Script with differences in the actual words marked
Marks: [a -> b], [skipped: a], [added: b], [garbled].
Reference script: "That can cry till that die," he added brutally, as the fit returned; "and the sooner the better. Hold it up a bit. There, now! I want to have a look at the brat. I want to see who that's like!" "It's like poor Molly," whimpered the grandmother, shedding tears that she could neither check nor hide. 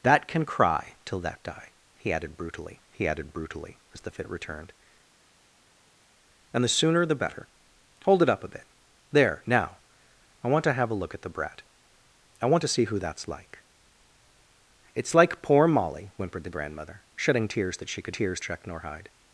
"That can cry till that die," he added brutally, [added: he added brutally] as the fit returned; "and the sooner the better. Hold it up a bit. There, now! I want to have a look at the brat. I want to see who that's like!" "It's like poor Molly," whimpered the grandmother, shedding tears that she could [neither -> tears] check nor hide.